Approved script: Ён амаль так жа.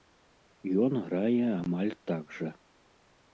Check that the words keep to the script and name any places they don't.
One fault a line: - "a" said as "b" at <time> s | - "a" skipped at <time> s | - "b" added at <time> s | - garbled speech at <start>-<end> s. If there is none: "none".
- "грае" added at 1.1 s